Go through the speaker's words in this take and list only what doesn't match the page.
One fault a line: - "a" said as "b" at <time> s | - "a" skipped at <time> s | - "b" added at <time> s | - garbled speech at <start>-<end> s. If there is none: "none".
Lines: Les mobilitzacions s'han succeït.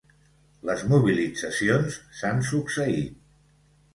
none